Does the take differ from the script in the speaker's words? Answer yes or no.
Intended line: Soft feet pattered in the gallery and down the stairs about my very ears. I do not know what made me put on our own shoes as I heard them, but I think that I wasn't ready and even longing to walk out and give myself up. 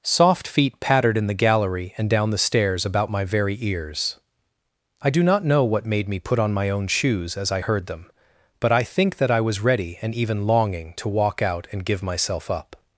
yes